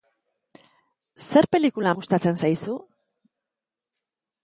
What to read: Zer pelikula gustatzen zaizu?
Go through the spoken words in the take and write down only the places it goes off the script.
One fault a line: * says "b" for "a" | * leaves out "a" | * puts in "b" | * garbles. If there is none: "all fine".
all fine